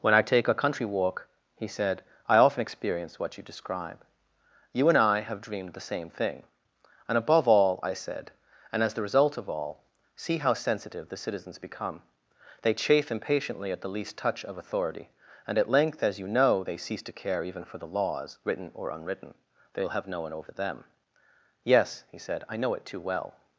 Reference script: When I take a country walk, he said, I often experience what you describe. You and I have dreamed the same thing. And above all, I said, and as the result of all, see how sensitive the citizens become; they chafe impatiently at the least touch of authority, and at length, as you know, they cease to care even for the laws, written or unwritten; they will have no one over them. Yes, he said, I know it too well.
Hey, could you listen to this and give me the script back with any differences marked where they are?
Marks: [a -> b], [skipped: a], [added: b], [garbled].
When I take a country walk, he said, I often experience what you describe. You and I have dreamed the same thing. And above all, I said, and as the result of all, see how sensitive the citizens become; they chafe impatiently at the least touch of authority, and at length, as you know, they cease to care even for the laws, written or unwritten; they will have no one over them. Yes, he said, I know it too well.